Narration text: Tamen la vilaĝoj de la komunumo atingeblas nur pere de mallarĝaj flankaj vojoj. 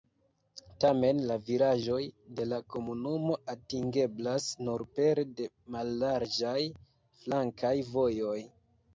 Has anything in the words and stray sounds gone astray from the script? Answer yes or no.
no